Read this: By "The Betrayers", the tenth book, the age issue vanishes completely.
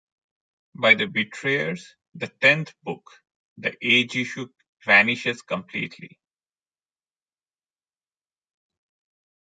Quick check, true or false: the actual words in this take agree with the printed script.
true